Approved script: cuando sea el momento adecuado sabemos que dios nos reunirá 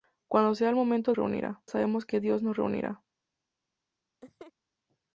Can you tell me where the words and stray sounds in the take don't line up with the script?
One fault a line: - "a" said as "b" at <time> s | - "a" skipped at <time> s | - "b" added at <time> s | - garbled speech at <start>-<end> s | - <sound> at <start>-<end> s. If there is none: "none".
- "adecuado" said as "reunirá" at 1.1 s
- laugh at 4.2-4.5 s